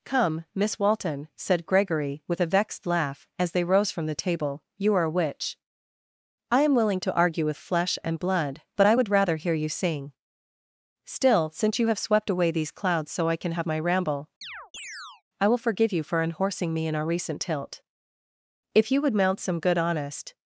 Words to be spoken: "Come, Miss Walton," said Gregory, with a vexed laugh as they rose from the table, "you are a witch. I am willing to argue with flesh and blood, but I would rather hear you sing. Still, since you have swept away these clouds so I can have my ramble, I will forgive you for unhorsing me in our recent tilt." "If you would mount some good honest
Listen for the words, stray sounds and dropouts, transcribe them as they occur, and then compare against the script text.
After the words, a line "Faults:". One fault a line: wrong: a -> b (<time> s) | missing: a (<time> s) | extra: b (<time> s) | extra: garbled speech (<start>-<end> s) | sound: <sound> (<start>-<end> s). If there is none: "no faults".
"Come, Miss Walton," said Gregory, with a vexed laugh as they rose from the table, "you are a witch. I am willing to argue with flesh and blood, but I would rather hear you sing. Still, since you have swept away these clouds so I can have my ramble, I will forgive you for unhorsing me in our recent tilt." "If you would mount some good honest
Faults:
sound: chirp (14.4-15.2 s)